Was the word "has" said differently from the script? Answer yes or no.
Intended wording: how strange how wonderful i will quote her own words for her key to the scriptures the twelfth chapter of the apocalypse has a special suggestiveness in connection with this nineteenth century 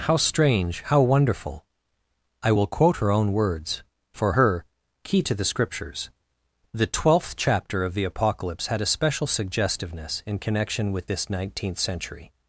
yes